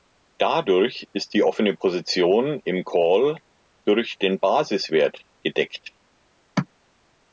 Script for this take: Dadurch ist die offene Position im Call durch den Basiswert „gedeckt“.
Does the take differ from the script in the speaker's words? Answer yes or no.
no